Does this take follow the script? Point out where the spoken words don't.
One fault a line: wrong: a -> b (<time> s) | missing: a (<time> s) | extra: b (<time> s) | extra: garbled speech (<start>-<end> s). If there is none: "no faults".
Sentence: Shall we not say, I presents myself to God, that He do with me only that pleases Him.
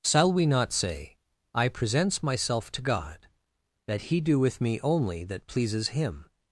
no faults